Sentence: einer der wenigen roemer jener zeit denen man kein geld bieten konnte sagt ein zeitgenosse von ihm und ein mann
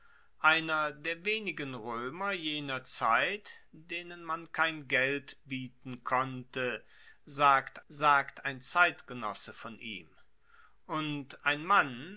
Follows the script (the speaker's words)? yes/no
no